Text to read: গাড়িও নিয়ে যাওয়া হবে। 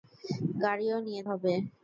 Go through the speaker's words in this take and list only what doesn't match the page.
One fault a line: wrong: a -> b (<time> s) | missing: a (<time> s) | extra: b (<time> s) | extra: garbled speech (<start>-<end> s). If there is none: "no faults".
missing: যাওয়া (1.2 s)